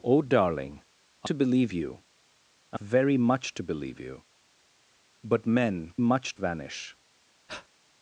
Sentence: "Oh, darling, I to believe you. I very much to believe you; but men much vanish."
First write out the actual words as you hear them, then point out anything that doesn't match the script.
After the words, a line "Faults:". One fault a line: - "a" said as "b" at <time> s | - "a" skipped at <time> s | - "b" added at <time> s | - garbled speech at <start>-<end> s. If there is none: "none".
"Oh, darling, I to believe you. I very much to believe you; but men much vanish."
Faults:
none